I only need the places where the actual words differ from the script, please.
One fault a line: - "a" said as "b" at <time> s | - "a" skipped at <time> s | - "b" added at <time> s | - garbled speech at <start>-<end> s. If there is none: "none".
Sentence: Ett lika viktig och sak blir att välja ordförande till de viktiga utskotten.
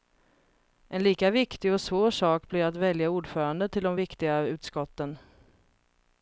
- "Ett" said as "En" at 0.9 s
- "svår" added at 1.8 s